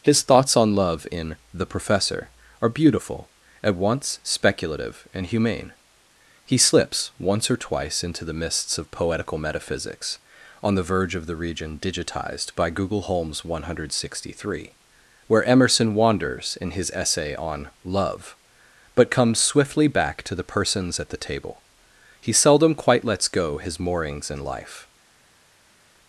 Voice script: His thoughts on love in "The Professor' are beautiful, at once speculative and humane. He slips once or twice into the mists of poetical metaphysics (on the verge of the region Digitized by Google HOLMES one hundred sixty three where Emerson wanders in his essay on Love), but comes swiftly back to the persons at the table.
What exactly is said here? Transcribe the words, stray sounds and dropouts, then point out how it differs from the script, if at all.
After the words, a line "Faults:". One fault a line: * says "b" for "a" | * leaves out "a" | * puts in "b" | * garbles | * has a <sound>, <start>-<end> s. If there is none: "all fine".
His thoughts on love in "The Professor' are beautiful, at once speculative and humane. He slips once or twice into the mists of poetical metaphysics (on the verge of the region Digitized by Google HOLMES one hundred sixty three where Emerson wanders in his essay on Love), but comes swiftly back to the persons at the table. He seldom quite lets go his moorings in life
Faults:
* puts in "He seldom quite lets go his moorings in life"